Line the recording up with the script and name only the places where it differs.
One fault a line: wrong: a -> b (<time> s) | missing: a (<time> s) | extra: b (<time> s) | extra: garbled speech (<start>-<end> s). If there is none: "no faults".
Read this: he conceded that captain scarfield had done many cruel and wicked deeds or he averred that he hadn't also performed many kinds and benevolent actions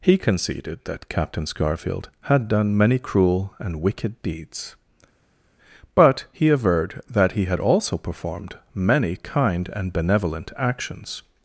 wrong: or -> but (5.9 s)
wrong: hadn't -> had (7.5 s)
wrong: kinds -> kind (9.2 s)